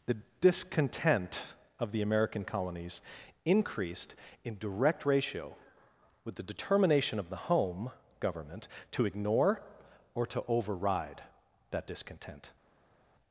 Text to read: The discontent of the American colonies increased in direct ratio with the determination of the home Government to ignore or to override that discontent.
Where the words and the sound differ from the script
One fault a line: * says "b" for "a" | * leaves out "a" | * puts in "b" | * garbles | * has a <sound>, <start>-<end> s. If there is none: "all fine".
all fine